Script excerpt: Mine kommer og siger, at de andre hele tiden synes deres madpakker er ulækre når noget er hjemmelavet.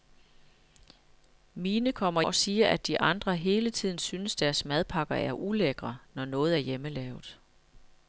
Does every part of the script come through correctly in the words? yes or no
yes